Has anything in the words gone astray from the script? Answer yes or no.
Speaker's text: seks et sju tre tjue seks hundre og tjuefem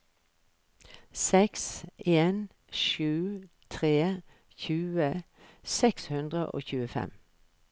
yes